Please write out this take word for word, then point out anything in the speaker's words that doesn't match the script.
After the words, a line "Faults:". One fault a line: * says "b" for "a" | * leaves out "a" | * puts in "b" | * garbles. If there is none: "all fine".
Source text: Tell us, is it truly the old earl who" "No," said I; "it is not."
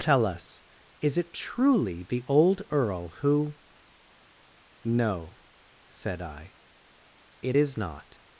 Tell us, is it truly the old earl who" "No," said I; "it is not."
Faults:
all fine